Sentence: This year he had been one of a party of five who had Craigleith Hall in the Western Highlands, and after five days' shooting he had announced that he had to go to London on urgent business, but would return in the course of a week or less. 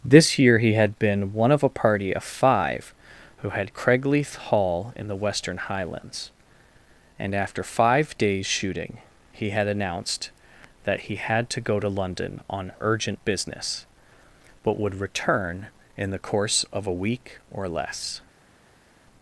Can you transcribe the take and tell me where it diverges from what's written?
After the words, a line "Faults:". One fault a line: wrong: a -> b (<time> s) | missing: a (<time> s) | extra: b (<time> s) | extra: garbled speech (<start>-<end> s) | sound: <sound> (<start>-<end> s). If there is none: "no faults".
This year he had been one of a party of five who had Craigleith Hall in the Western Highlands, and after five days' shooting he had announced that he had to go to London on urgent business, but would return in the course of a week or less.
Faults:
no faults